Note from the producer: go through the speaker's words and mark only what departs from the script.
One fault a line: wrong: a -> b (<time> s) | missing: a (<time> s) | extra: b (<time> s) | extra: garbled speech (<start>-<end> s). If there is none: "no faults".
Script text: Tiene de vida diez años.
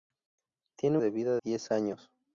no faults